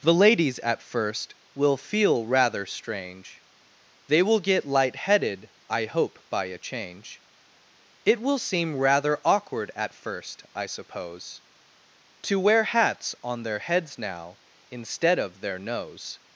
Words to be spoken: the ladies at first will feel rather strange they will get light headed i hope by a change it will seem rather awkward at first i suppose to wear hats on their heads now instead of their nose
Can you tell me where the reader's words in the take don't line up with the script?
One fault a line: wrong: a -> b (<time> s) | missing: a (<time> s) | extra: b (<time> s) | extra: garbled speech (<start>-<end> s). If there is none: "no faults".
no faults